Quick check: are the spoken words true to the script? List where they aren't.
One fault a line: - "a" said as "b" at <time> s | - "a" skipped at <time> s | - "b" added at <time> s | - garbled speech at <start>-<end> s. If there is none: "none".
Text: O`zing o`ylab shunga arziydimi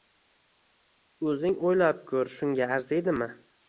- "ko`r" added at 2.1 s